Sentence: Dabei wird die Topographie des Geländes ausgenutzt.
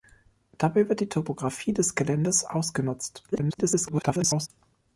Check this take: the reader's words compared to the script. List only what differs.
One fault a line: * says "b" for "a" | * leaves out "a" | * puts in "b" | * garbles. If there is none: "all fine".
* garbles